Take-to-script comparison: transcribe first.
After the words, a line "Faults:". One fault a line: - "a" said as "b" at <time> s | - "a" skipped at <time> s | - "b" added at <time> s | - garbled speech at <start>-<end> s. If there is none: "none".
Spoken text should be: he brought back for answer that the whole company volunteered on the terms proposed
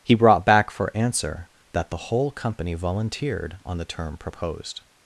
he brought back for answer that the whole company volunteered on the term proposed
Faults:
- "terms" said as "term" at 3.9 s